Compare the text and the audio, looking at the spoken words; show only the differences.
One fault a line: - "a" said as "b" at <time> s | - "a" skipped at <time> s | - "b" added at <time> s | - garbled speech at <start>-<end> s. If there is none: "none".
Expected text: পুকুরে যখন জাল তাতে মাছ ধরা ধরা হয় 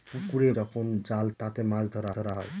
none